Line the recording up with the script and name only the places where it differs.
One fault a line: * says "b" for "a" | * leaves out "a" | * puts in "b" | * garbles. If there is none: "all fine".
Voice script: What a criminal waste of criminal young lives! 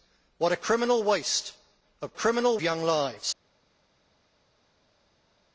all fine